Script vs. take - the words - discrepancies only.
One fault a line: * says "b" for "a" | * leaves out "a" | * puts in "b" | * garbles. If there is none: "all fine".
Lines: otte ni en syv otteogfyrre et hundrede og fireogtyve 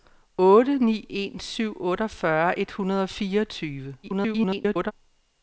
* garbles